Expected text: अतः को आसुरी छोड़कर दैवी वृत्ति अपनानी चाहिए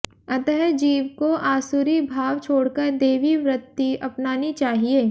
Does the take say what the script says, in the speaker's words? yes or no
no